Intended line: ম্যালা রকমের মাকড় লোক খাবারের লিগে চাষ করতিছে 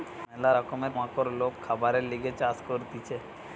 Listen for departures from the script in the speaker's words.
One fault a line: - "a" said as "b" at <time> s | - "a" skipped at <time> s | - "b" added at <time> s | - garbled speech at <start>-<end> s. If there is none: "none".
none